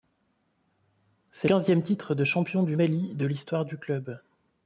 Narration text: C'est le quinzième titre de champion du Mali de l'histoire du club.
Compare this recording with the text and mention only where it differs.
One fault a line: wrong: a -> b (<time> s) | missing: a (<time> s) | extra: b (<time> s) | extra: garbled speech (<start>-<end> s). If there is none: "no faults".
missing: le (1.5 s)